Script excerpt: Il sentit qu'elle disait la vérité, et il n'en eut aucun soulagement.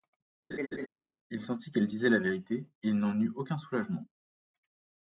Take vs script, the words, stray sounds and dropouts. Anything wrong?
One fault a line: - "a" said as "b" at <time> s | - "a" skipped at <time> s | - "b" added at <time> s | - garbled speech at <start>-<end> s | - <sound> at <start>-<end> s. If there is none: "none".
- laugh at 0.5-0.9 s